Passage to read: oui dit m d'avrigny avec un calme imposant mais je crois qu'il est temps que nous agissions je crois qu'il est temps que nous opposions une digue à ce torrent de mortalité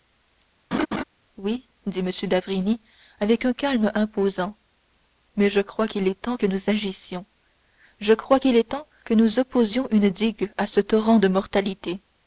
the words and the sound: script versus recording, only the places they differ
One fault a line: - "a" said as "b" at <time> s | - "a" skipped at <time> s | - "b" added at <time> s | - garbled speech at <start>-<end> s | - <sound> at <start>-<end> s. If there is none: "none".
- laugh at 0.7-1.0 s